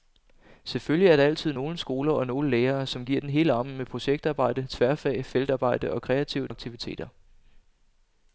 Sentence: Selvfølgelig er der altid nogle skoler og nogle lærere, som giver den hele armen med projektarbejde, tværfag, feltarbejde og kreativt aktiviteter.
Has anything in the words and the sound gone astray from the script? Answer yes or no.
no